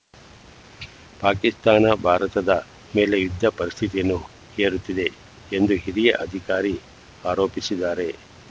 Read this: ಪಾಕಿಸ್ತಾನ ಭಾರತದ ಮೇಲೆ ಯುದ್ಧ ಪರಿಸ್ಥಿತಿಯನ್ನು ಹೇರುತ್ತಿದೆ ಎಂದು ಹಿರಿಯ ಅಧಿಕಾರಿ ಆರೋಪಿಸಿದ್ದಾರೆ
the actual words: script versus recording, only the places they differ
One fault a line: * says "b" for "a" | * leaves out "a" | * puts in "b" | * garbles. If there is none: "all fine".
all fine